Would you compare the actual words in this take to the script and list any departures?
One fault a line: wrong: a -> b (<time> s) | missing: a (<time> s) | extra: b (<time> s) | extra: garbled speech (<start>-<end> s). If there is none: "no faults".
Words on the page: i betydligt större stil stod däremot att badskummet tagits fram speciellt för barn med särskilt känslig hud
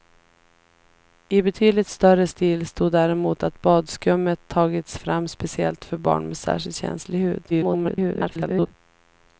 extra: garbled speech (7.5-8.7 s)